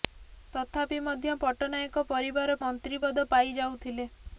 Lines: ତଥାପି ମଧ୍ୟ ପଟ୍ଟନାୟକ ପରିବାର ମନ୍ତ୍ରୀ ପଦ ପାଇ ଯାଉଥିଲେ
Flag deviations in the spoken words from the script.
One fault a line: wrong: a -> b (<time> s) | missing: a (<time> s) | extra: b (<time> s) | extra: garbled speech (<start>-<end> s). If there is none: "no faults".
no faults